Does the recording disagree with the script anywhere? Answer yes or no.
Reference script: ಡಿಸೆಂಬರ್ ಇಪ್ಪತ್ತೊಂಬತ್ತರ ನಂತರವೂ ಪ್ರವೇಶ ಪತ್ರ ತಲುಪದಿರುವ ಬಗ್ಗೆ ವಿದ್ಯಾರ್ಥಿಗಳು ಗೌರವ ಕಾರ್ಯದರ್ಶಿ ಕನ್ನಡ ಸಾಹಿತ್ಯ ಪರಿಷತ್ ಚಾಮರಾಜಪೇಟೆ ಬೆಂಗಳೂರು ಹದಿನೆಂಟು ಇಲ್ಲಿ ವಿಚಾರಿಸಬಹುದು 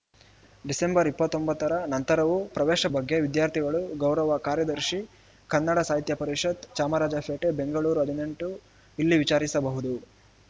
yes